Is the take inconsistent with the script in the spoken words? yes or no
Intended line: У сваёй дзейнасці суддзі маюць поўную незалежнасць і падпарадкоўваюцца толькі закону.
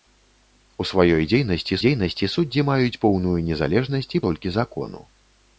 yes